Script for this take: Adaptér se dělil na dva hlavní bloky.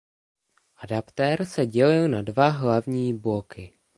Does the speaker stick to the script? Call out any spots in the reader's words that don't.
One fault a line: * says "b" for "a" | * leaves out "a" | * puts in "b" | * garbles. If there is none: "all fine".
all fine